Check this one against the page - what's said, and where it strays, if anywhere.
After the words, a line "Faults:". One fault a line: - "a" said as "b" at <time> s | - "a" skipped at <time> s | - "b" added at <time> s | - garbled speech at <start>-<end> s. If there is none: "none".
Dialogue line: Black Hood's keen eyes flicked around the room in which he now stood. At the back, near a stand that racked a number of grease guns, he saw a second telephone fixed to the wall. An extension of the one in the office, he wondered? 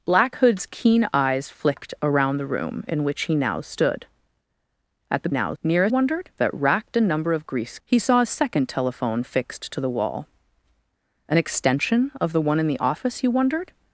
Black Hood's keen eyes flicked around the room in which he now stood. At the now, near a wondered that racked a number of grease he saw a second telephone fixed to the wall. An extension of the one in the office, he wondered?
Faults:
- "back" said as "now" at 5.3 s
- "stand" said as "wondered" at 5.9 s
- "guns" skipped at 7.8 s